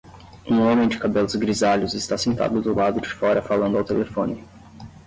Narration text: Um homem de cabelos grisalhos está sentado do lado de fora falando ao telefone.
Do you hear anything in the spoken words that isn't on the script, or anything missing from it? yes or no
no